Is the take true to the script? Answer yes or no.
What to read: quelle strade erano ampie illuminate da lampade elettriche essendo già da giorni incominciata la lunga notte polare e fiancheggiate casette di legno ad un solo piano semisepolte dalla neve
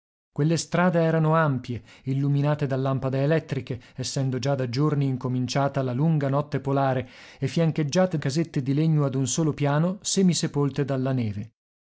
yes